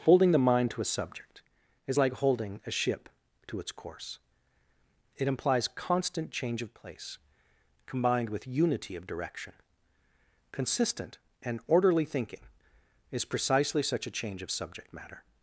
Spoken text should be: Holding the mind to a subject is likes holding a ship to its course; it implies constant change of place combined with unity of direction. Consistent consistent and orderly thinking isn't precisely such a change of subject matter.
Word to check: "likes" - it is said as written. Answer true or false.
false